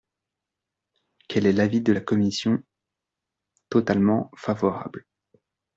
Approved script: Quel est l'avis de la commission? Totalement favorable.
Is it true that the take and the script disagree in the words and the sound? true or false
false